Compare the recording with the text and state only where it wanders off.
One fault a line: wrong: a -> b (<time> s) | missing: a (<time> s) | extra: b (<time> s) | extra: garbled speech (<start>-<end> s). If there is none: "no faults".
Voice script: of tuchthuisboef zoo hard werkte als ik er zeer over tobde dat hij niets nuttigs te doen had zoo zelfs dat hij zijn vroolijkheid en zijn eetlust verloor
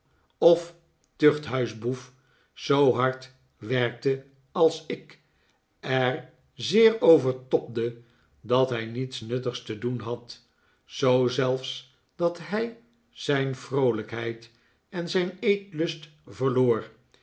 no faults